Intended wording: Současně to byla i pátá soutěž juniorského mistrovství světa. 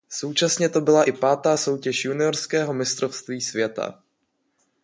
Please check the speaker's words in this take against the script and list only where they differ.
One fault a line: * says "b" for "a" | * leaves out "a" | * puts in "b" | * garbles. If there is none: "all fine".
all fine